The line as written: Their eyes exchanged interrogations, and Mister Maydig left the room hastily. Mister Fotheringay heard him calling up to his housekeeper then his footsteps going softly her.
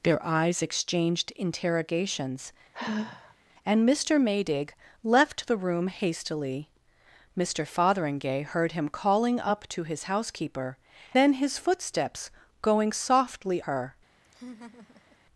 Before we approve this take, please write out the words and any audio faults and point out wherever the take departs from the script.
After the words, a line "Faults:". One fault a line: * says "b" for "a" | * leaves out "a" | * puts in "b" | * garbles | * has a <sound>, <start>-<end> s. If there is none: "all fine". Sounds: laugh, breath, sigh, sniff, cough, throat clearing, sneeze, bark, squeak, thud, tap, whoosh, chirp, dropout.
Their eyes exchanged interrogations, and Mister Maydig left the room hastily. Mister Fotheringay heard him calling up to his housekeeper then his footsteps going softly her.
Faults:
* has a sigh, 2.7-3.3 s
* has a laugh, 14.2-15.2 s